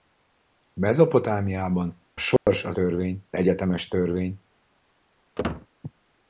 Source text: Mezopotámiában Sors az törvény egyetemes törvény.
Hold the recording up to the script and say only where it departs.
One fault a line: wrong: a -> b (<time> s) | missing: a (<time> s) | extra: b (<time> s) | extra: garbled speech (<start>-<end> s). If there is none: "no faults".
no faults